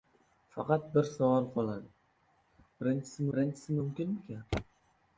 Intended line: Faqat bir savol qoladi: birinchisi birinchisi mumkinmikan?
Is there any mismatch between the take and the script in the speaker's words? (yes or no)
no